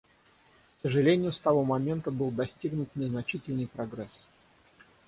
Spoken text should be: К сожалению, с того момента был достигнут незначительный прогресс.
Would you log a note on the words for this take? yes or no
no